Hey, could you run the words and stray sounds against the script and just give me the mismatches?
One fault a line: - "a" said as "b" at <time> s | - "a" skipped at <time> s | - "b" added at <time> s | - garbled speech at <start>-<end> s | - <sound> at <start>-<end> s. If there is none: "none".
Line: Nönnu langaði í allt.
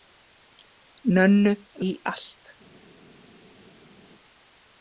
- "langaði" skipped at 1.5 s